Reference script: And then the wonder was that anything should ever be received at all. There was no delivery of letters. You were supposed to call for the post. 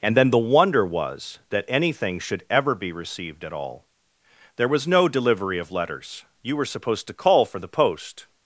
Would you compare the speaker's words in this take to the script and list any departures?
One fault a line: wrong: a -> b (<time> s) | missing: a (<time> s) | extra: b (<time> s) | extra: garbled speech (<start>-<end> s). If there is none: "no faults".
no faults